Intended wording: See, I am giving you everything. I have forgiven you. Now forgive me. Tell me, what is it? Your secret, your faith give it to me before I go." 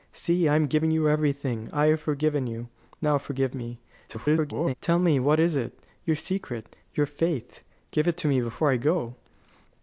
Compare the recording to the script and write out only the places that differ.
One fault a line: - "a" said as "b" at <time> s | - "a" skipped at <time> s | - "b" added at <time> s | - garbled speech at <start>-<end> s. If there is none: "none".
- garbled speech at 4.1-4.7 s